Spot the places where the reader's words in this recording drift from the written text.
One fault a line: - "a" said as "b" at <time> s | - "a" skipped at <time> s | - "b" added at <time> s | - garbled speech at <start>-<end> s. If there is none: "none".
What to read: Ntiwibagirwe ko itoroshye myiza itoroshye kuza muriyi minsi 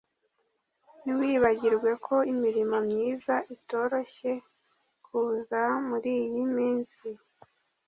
- "itoroshye" said as "imirimo" at 2.3 s